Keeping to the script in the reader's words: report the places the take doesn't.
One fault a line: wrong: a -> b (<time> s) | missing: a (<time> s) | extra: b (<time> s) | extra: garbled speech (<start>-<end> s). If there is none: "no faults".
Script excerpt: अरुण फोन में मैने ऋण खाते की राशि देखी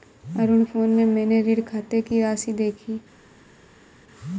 no faults